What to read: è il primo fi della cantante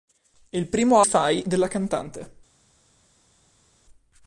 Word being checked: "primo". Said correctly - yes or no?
yes